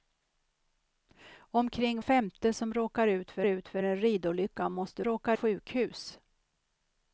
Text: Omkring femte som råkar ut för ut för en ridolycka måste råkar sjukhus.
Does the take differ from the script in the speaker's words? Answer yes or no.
no